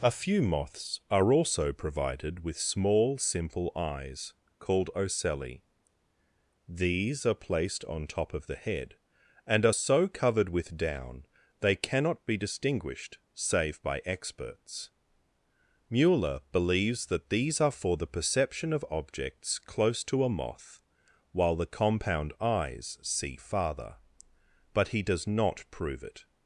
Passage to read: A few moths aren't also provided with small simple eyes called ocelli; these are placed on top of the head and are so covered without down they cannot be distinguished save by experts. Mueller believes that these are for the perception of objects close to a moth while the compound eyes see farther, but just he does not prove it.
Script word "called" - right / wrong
right